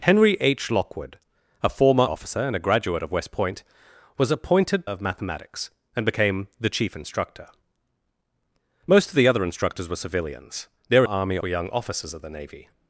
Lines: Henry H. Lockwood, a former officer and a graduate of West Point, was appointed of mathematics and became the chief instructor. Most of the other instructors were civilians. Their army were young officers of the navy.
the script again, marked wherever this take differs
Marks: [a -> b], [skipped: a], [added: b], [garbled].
Henry H. Lockwood, a former officer and a graduate of West Point, was appointed of mathematics and became the chief instructor. Most of the other instructors were civilians. Their army were young officers of the navy.